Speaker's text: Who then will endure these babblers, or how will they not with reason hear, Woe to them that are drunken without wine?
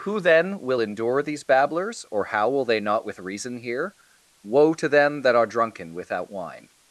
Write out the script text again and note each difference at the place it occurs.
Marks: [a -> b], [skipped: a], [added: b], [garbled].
Who then will endure these babblers, or how will they not with reason hear, Woe to them that are drunken without wine?